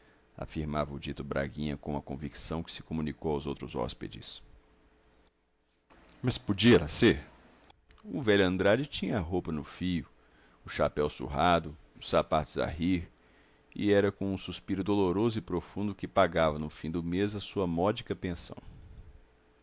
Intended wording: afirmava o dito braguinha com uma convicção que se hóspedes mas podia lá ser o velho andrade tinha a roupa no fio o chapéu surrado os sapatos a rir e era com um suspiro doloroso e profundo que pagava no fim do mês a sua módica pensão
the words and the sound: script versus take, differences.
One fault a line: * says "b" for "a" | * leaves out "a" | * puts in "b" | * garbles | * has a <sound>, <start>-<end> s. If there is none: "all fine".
* puts in "comunicou aos outros"